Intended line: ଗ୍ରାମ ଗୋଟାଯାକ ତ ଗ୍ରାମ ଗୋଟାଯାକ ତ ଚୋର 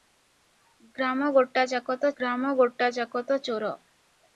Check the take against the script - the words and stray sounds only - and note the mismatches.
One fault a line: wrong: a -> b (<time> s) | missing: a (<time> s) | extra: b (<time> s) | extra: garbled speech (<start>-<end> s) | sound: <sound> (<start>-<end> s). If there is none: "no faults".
no faults